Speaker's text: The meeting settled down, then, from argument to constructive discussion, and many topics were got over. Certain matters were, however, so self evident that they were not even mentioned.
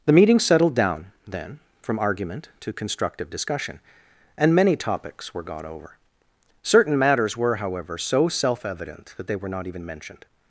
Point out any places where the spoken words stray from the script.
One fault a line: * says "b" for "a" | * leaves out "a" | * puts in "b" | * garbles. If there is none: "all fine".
all fine